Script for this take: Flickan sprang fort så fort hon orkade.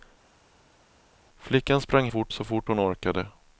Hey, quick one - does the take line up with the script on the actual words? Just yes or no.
yes